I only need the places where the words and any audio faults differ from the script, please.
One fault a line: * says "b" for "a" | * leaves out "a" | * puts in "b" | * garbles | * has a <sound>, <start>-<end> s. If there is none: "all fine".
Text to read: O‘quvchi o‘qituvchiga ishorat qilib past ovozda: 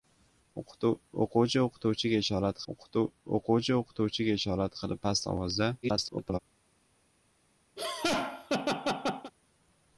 * puts in "o‘quvchi o‘qituvchiga ishorat"
* garbles
* has a laugh, 7.8-9.3 s